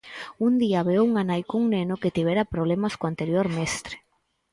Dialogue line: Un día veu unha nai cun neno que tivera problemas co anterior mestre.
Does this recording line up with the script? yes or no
yes